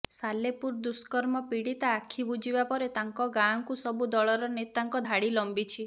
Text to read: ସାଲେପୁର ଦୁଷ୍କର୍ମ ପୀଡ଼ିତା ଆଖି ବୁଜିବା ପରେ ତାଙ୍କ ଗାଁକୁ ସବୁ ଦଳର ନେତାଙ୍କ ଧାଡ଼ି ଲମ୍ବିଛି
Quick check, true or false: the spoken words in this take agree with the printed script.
true